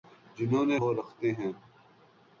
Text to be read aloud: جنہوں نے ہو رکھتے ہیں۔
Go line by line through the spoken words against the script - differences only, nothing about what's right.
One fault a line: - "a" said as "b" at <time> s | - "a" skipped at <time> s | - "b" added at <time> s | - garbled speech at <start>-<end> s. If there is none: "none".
none